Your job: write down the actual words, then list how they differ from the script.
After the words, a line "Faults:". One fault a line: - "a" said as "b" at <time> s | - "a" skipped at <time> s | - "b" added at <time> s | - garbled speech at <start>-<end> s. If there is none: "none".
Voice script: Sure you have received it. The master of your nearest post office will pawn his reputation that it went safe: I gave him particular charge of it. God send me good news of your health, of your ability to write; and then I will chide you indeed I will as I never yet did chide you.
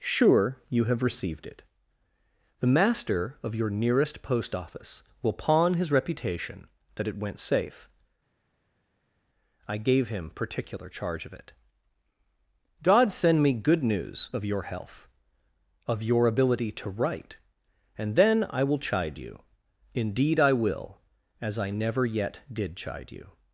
Sure you have received it. The master of your nearest post office will pawn his reputation that it went safe: I gave him particular charge of it. God send me good news of your health, of your ability to write; and then I will chide you indeed I will as I never yet did chide you.
Faults:
none